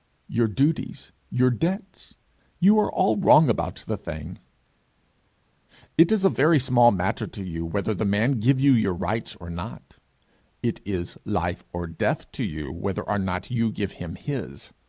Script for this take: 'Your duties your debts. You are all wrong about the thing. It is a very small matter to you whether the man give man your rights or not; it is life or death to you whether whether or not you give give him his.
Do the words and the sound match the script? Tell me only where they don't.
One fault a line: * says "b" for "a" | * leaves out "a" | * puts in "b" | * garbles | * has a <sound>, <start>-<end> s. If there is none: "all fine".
* says "you" for "man"
* leaves out "whether"
* leaves out "give"